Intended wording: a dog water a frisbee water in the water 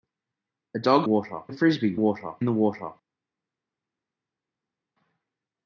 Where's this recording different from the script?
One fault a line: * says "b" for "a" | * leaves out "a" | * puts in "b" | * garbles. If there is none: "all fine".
all fine